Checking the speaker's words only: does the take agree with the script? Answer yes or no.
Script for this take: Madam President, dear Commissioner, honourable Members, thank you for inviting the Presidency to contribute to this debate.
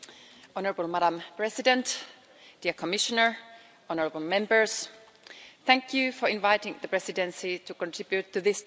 yes